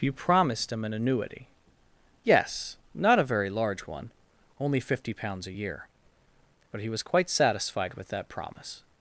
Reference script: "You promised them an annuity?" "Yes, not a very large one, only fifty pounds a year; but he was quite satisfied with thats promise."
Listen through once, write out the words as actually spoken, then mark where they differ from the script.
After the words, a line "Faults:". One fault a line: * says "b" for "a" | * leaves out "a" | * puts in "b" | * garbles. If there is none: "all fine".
"You promised him an annuity?" "Yes, not a very large one, only fifty pounds a year; but he was quite satisfied with that promise."
Faults:
* says "him" for "them"
* says "that" for "thats"